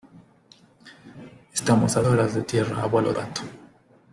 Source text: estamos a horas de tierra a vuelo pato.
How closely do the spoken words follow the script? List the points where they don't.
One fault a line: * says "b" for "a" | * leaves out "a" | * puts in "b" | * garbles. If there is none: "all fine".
all fine